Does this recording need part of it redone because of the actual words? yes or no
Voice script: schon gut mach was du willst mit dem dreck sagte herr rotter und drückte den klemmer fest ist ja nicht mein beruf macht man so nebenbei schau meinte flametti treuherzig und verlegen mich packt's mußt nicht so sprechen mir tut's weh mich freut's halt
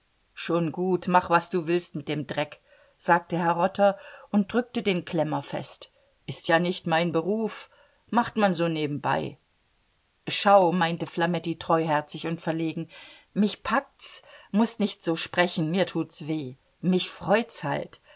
no